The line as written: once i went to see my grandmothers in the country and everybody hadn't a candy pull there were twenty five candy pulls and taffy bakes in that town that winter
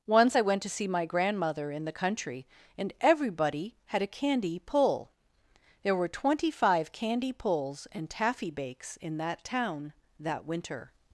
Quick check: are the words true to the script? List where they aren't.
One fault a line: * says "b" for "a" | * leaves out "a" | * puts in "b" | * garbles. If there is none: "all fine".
* says "grandmother" for "grandmothers"
* says "had" for "hadn't"